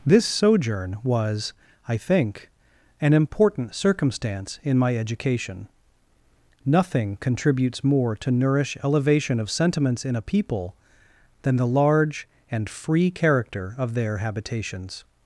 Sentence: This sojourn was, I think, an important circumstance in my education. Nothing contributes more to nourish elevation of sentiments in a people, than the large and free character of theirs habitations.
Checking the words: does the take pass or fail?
fail